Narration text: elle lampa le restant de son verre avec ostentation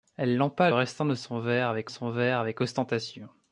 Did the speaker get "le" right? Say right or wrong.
wrong